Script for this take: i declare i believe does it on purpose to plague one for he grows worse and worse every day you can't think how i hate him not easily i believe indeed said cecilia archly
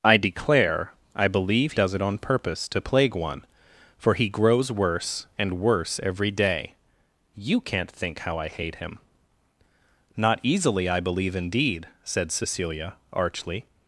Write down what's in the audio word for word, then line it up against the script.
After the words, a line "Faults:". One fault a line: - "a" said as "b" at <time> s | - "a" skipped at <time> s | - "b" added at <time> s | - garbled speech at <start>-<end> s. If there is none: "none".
i declare i believe does it on purpose to plague one for he grows worse and worse every day you can't think how i hate him not easily i believe indeed said cecilia archly
Faults:
none